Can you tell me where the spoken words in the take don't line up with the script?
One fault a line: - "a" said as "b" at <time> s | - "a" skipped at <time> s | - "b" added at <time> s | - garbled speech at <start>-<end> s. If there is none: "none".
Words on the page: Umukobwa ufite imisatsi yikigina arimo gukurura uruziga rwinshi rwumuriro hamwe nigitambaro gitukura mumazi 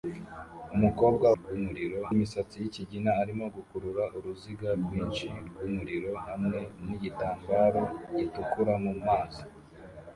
- "ufite" said as "rwumuriro" at 1.4 s